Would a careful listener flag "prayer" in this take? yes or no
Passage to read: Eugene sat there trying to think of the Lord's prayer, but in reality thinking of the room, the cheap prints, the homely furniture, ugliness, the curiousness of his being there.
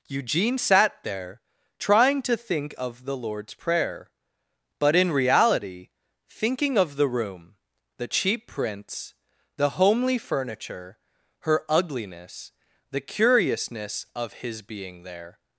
no